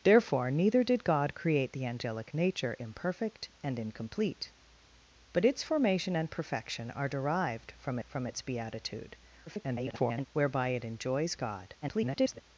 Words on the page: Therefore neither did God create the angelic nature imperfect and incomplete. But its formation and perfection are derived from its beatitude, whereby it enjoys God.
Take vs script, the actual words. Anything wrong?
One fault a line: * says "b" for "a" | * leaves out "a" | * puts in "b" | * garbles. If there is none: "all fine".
* puts in "from"
* garbles
* garbles